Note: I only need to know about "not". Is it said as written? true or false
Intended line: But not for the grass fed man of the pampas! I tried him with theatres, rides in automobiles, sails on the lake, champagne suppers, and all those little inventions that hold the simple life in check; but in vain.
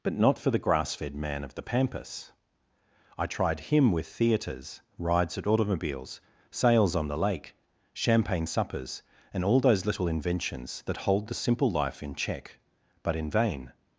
true